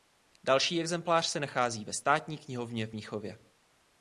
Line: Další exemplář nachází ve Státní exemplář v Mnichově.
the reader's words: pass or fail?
fail